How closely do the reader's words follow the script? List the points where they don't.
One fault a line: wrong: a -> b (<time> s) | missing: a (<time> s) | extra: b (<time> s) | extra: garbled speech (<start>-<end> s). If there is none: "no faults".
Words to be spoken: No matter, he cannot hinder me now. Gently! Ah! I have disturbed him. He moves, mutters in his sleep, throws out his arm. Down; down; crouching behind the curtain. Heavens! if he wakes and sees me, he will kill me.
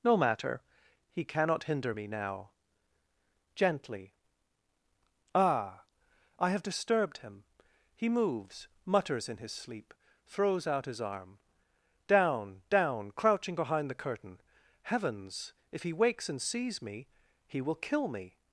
no faults